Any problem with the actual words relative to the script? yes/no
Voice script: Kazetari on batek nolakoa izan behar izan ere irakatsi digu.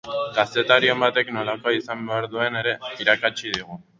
yes